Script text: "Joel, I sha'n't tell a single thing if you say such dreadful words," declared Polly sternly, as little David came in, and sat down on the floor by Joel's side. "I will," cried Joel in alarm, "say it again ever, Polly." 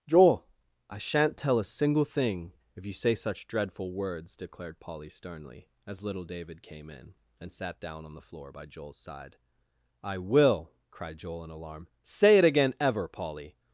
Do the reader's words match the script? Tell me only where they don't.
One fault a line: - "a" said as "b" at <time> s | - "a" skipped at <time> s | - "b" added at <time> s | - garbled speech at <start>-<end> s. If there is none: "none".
none